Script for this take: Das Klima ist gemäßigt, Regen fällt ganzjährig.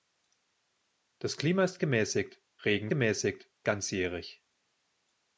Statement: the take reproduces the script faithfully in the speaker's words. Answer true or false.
false